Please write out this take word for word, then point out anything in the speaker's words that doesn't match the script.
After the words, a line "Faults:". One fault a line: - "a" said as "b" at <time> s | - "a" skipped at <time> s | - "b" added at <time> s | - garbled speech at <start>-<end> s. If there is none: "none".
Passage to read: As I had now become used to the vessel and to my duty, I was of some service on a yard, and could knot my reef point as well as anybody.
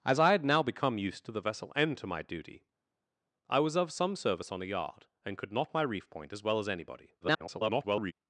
As I had now become used to the vessel and to my duty, I was of some service on a yard, and could knot my reef point as well as anybody. [garbled]
Faults:
- garbled speech at 7.2-8.1 s